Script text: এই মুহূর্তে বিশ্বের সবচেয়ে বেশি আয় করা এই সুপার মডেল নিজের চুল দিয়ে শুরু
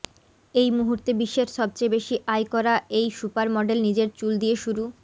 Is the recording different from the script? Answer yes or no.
no